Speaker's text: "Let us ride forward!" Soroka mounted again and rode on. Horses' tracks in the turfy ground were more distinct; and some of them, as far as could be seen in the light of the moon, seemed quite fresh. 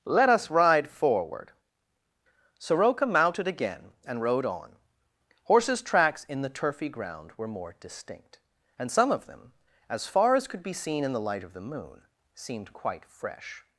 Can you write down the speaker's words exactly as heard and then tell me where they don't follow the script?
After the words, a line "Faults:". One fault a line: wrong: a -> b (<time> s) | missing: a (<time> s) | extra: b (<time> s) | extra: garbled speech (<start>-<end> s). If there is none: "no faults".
"Let us ride forward!" Soroka mounted again and rode on. Horses' tracks in the turfy ground were more distinct; and some of them, as far as could be seen in the light of the moon, seemed quite fresh.
Faults:
no faults